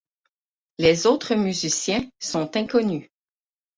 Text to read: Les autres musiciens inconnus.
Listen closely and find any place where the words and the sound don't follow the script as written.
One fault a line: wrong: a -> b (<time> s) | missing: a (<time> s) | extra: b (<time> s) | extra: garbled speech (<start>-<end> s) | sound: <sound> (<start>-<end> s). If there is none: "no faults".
extra: sont (2.2 s)